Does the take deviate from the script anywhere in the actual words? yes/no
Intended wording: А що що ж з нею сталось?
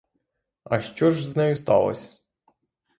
yes